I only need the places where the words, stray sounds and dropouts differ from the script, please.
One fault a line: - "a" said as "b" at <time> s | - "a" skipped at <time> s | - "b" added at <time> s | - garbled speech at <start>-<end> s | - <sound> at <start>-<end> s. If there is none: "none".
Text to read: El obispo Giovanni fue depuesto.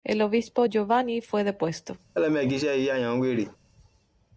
- laugh at 2.1-3.6 s